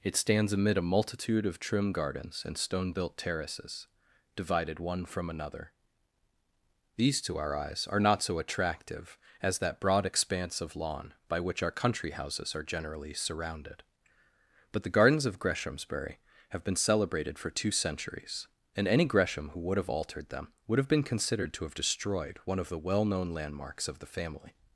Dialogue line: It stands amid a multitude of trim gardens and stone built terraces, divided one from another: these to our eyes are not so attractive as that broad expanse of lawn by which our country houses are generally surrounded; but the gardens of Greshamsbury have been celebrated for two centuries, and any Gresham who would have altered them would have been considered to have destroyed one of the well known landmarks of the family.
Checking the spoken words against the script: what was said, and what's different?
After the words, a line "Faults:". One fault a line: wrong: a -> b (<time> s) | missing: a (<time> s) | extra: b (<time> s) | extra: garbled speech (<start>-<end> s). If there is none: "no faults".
It stands amid a multitude of trim gardens and stone built terraces, divided one from another: these to our eyes are not so attractive as that broad expanse of lawn by which our country houses are generally surrounded; but the gardens of Greshamsbury have been celebrated for two centuries, and any Gresham who would have altered them would have been considered to have destroyed one of the well known landmarks of the family.
Faults:
no faults